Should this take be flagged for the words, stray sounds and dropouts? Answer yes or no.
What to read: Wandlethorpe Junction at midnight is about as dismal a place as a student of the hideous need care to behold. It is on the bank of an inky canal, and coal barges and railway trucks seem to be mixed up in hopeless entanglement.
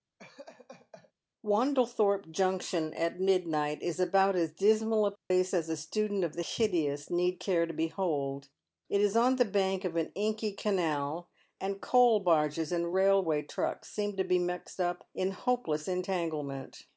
yes